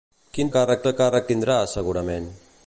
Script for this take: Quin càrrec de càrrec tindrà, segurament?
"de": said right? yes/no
yes